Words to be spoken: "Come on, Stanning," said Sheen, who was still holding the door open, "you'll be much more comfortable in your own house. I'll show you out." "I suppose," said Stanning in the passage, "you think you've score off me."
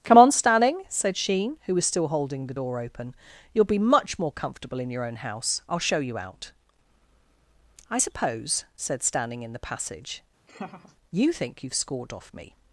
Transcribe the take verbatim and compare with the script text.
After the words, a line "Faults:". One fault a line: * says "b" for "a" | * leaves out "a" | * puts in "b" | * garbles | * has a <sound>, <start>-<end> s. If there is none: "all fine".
"Come on, Stanning," said Sheen, who was still holding the door open, "you'll be much more comfortable in your own house. I'll show you out." "I suppose," said Stanning in the passage, "you think you've scored off me."
Faults:
* has a laugh, 10.5-11.0 s
* says "scored" for "score"